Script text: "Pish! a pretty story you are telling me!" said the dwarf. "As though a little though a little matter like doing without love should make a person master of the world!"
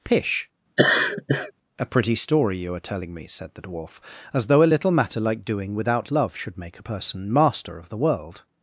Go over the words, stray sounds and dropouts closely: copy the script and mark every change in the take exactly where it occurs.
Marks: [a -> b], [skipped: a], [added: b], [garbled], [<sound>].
"Pish! [laugh] a pretty story you are telling me!" said the dwarf. "As though a little [skipped: though a little] matter like doing without love should make a person master of the world!"